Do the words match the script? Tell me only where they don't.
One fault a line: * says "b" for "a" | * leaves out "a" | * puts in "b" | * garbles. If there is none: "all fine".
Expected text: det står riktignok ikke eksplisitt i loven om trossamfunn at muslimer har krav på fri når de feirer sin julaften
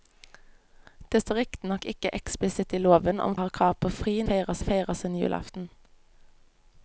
* leaves out "trossamfunn at muslimer"
* says "feirer" for "når"